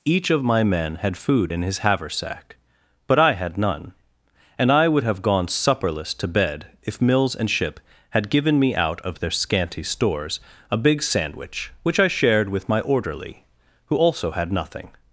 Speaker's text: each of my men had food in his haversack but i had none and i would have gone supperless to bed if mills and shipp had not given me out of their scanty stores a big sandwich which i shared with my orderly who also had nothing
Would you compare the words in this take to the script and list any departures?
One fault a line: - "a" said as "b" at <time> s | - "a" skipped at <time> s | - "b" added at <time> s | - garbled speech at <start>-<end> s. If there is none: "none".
- "not" skipped at 8.3 s